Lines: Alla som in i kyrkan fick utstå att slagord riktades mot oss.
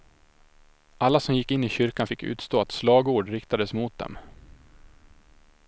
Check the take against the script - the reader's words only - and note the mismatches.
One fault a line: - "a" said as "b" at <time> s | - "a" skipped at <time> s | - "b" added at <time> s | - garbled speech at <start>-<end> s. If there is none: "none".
- "gick" added at 1.4 s
- "oss" said as "dem" at 4.0 s